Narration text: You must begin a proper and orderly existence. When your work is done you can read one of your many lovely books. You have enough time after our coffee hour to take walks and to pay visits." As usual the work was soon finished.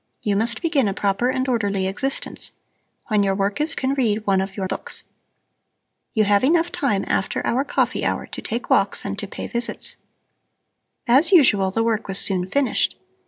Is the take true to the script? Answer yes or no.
no